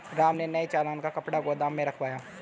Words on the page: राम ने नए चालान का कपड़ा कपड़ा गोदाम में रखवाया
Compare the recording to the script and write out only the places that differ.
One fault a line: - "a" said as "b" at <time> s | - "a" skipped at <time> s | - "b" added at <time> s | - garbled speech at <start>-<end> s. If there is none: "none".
- "कपड़ा" skipped at 1.4 s